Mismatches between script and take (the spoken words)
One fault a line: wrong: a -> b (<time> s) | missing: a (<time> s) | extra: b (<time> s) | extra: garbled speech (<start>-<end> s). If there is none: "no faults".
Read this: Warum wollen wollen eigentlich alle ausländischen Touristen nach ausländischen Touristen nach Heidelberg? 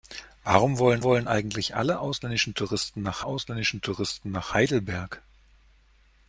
no faults